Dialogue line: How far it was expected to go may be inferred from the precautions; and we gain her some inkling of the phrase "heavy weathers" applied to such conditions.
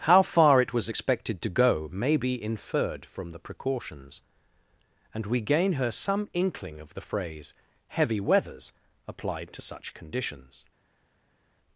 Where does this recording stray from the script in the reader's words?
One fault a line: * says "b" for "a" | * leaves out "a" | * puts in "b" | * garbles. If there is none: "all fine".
all fine